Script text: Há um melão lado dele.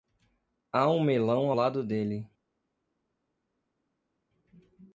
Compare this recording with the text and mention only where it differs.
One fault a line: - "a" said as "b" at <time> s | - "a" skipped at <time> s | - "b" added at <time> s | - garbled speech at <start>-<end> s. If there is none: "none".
none